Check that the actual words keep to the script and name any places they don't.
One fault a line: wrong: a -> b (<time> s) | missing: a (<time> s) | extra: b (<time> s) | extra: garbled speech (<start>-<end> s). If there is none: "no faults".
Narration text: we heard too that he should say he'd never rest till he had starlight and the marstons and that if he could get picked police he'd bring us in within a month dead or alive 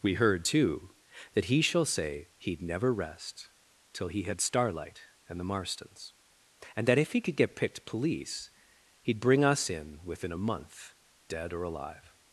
wrong: should -> shall (1.6 s)